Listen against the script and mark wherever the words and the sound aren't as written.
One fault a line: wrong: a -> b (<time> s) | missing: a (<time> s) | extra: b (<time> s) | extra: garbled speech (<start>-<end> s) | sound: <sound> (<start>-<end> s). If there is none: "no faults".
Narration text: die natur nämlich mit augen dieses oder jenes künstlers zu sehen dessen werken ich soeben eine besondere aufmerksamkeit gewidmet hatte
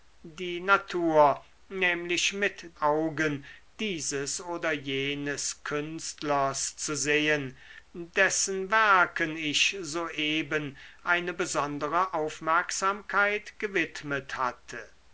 no faults